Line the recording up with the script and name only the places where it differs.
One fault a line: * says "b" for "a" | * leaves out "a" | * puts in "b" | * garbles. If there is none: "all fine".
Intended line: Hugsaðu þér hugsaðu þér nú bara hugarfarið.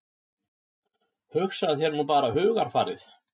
* leaves out "hugsaðu þér"